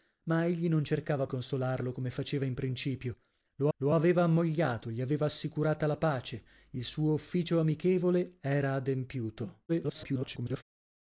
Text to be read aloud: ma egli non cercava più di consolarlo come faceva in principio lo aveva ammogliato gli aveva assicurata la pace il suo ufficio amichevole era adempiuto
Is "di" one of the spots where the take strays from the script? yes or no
yes